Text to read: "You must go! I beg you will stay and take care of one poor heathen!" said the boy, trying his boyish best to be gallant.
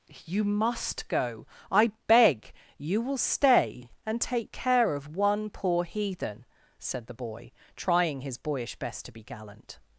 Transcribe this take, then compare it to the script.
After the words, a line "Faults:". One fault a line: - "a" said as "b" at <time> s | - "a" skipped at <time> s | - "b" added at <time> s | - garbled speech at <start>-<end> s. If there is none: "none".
"You must go! I beg you will stay and take care of one poor heathen!" said the boy, trying his boyish best to be gallant.
Faults:
none